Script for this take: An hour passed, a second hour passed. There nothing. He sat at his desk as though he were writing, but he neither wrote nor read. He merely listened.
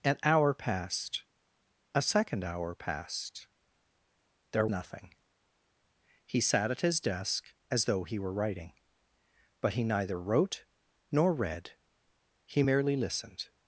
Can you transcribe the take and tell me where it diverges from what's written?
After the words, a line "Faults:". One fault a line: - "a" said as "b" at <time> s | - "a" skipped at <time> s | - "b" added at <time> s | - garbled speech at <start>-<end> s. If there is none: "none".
An hour passed, a second hour passed. There nothing. He sat at his desk as though he were writing, but he neither wrote nor read. He merely listened.
Faults:
none